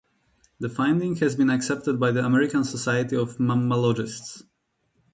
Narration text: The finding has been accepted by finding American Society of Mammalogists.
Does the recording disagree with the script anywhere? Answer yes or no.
yes